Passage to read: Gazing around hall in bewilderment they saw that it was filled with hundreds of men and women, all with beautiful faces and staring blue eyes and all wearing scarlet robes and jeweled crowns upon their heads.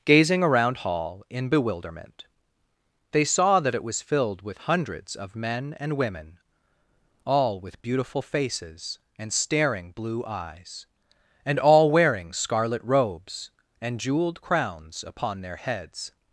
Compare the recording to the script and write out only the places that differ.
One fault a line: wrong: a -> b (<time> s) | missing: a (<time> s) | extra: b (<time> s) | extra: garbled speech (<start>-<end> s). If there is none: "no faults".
no faults